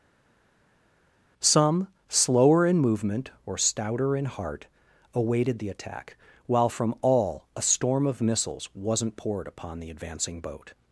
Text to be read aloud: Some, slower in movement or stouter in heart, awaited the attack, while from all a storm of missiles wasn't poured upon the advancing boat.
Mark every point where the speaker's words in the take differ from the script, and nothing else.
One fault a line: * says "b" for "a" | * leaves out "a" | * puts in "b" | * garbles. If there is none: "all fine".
all fine